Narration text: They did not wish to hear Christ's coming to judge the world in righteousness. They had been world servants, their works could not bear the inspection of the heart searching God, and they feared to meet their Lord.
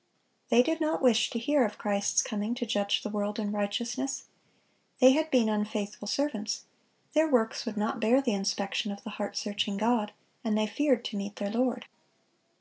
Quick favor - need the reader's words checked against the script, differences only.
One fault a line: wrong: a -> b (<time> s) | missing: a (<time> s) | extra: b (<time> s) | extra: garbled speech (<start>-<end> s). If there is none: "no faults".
extra: of (1.6 s)
wrong: world -> unfaithful (5.5 s)
wrong: could -> would (7.6 s)